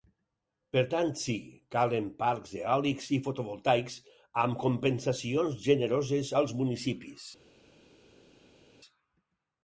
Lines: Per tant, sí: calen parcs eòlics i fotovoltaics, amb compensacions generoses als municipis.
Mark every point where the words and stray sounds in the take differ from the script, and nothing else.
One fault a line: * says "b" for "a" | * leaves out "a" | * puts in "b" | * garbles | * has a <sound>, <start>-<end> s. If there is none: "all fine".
all fine